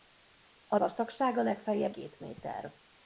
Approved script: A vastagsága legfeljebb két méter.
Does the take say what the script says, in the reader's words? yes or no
yes